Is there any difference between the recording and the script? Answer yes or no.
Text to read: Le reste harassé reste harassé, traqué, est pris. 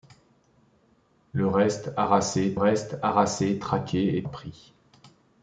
no